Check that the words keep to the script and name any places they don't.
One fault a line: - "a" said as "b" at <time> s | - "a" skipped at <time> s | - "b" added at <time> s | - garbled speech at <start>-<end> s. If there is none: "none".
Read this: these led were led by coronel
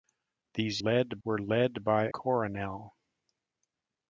none